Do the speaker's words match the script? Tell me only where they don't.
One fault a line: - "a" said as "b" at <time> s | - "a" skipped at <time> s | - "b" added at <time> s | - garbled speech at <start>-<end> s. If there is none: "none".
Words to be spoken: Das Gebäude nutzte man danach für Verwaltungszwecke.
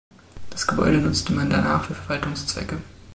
none